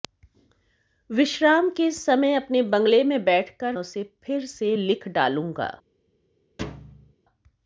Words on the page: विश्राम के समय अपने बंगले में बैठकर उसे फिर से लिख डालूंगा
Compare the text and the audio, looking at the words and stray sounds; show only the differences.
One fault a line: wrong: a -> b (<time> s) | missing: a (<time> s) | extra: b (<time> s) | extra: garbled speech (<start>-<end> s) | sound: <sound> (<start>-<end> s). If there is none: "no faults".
sound: thud (6.6-7.1 s)